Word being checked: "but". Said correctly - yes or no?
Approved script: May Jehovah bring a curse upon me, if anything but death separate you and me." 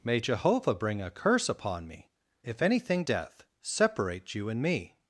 no